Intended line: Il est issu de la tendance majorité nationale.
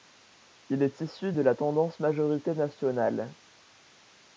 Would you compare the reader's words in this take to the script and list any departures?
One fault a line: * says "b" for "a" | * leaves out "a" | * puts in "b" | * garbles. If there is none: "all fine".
all fine